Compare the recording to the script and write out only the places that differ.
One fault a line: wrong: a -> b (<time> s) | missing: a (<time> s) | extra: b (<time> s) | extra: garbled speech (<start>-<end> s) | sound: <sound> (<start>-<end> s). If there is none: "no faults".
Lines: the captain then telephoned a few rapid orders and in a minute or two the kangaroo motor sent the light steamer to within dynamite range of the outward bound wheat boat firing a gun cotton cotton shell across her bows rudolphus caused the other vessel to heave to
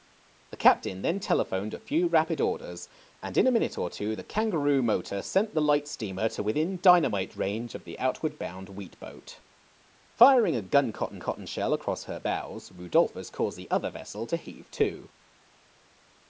no faults